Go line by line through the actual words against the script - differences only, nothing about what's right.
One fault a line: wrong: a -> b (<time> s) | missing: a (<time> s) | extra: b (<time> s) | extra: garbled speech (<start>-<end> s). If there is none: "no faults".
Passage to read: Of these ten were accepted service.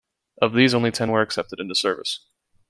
extra: only (0.7 s)
extra: into (1.6 s)